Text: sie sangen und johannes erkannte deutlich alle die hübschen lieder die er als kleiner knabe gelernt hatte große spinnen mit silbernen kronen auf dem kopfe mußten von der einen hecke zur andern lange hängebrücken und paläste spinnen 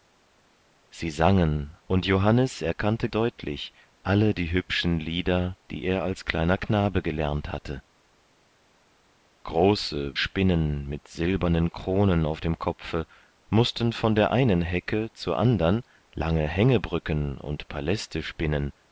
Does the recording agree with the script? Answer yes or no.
yes